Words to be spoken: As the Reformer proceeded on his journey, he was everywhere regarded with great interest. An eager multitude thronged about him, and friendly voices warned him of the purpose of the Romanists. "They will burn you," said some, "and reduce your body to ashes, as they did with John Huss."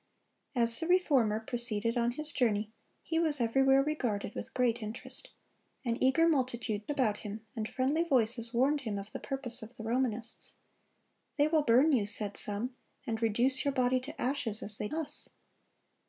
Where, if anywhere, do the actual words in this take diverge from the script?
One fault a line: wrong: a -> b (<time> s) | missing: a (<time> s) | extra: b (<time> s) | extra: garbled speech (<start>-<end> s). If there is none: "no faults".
missing: thronged (6.9 s)
missing: did with John (14.9 s)